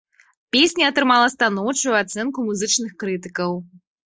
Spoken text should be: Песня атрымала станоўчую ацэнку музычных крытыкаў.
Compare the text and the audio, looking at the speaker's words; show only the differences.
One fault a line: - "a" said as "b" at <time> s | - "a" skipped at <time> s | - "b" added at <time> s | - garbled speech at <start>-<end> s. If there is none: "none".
none